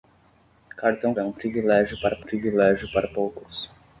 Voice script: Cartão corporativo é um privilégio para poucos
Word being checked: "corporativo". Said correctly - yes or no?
no